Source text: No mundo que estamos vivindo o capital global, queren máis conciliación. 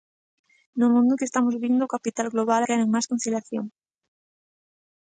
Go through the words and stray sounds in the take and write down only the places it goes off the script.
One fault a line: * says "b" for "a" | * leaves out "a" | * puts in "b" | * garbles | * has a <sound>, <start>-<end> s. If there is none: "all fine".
all fine